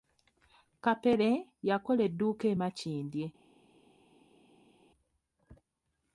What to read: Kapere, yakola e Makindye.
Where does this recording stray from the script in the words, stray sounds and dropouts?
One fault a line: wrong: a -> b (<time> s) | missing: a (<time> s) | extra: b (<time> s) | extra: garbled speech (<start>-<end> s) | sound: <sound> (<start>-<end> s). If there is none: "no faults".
extra: edduuka (2.1 s)